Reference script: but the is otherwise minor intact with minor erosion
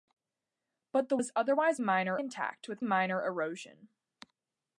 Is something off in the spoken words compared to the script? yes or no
no